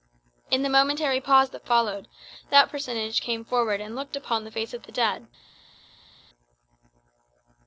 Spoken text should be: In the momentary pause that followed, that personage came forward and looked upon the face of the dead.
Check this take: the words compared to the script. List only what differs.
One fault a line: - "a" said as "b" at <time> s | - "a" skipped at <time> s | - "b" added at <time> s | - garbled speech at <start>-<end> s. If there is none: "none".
none